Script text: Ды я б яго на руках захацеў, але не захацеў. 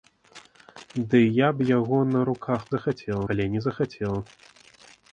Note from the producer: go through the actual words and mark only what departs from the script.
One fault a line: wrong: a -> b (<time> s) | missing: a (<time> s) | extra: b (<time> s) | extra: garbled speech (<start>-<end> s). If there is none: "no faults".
no faults